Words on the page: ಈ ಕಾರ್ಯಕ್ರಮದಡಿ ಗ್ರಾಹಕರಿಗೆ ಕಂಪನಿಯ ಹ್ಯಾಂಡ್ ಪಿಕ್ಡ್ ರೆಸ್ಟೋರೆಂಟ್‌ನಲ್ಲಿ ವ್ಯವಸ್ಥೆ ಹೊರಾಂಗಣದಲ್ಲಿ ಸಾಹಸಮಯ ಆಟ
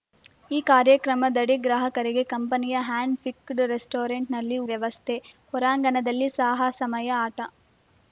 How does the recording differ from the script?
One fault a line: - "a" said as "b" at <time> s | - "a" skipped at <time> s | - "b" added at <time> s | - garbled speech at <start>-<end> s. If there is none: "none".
none